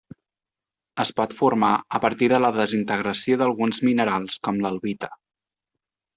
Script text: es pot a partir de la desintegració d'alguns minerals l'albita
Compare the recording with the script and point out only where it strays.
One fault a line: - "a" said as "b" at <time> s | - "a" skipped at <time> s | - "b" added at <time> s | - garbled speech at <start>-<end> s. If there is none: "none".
- "formar" added at 1.4 s
- "com" added at 4.5 s